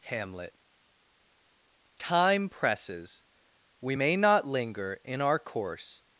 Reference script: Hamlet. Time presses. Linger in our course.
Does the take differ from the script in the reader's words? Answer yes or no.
yes